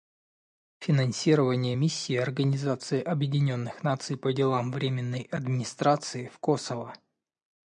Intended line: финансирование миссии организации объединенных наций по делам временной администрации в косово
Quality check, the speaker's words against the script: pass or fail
pass